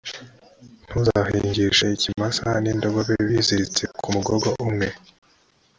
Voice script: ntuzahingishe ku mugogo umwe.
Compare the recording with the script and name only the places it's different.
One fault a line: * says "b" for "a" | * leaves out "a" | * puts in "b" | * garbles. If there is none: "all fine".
* puts in "ikimasa n'indogobe biziritse"